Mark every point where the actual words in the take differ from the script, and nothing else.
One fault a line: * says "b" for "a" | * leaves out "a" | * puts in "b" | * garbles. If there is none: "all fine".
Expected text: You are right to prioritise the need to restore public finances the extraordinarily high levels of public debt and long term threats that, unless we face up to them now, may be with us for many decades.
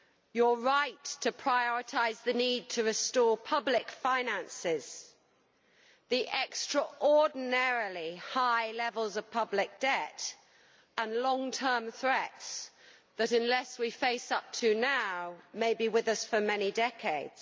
all fine